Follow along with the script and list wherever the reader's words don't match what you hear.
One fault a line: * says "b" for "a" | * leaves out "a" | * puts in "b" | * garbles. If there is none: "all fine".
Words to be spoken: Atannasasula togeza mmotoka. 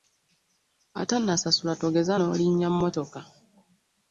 * puts in "n'olinnya"